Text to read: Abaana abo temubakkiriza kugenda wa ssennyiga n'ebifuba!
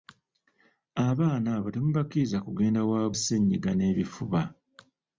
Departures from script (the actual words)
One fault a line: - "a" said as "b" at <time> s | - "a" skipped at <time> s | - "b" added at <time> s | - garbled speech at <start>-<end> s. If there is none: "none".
none